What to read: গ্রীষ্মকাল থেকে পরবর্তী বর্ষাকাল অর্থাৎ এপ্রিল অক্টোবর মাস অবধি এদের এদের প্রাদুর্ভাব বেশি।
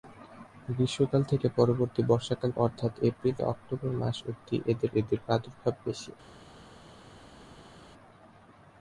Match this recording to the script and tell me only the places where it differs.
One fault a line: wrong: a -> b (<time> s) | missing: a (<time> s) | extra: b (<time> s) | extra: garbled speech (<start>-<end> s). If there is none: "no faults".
no faults